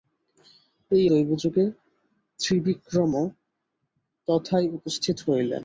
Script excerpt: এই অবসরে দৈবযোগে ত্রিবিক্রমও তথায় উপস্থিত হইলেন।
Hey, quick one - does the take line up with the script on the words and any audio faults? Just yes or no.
no